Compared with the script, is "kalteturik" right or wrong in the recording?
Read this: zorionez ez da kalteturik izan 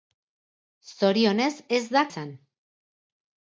wrong